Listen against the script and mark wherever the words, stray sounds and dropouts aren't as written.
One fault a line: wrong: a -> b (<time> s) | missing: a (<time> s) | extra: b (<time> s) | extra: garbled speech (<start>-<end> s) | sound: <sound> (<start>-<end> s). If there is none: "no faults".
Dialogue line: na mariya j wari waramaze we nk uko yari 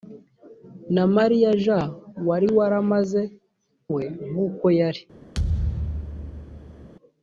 sound: thud (5.3-6.9 s)